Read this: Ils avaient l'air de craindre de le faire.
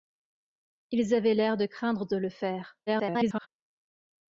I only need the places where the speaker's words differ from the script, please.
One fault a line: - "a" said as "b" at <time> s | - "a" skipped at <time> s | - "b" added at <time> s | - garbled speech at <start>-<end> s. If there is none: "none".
- garbled speech at 2.9-3.5 s